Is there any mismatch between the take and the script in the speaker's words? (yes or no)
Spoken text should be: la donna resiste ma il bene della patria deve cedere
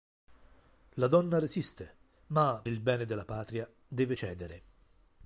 no